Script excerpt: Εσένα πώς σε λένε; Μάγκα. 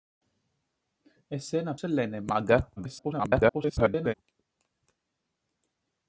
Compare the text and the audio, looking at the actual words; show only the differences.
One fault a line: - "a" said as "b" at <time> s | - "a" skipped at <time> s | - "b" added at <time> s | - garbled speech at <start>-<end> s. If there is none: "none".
- "πώς" skipped at 1.8 s
- garbled speech at 2.8-4.1 s